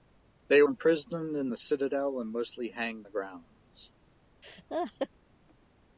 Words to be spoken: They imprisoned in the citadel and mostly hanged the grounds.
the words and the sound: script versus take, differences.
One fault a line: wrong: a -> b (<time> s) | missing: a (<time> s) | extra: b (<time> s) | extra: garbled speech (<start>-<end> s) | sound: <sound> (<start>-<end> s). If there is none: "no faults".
sound: laugh (4.4-5.1 s)